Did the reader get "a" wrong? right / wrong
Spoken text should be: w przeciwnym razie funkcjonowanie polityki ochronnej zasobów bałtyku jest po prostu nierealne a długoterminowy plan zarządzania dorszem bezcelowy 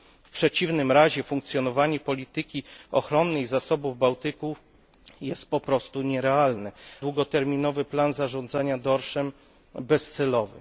wrong